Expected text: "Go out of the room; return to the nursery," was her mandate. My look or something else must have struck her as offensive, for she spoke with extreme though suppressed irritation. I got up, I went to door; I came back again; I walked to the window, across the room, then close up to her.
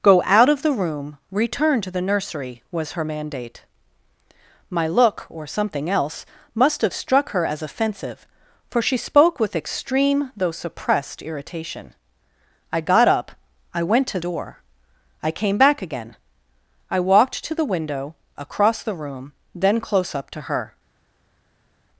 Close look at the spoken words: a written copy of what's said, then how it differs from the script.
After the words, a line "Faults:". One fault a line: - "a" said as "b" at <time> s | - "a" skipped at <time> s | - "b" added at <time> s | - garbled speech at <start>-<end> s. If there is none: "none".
"Go out of the room; return to the nursery," was her mandate. My look or something else must have struck her as offensive, for she spoke with extreme though suppressed irritation. I got up, I went to door; I came back again; I walked to the window, across the room, then close up to her.
Faults:
none